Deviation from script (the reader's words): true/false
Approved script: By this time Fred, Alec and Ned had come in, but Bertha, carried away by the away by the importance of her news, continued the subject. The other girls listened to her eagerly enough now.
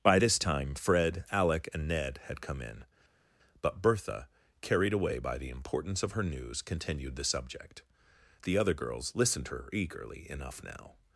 true